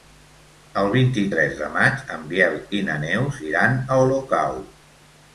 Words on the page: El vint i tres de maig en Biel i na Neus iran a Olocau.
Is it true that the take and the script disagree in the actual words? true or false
false